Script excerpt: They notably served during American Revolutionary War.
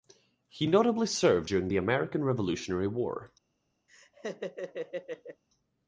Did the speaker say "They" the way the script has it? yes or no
no